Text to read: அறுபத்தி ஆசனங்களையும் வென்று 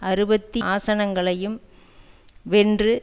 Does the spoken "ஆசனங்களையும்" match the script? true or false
true